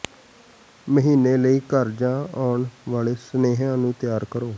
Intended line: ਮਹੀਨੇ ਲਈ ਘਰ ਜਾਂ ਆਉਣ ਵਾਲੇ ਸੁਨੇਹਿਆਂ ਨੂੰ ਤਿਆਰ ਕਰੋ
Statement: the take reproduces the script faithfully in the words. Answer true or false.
true